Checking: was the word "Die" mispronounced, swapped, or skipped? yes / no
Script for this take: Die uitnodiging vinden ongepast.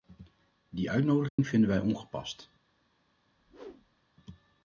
no